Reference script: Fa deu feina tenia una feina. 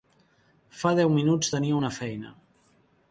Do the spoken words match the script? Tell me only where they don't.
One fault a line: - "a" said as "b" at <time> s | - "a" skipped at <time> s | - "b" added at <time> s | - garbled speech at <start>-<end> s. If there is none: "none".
- "feina" said as "minuts" at 1.2 s